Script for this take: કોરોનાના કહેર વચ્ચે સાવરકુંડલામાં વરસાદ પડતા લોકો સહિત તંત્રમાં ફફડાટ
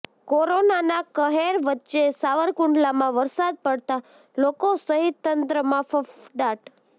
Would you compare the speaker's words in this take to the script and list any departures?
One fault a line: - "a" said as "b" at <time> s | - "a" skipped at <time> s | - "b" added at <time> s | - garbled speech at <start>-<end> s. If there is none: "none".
none